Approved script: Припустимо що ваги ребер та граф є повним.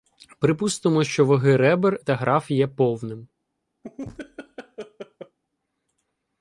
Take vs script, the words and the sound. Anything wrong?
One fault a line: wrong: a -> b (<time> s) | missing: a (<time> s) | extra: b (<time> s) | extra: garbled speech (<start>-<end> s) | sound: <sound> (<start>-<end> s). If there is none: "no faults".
sound: laugh (3.8-5.4 s)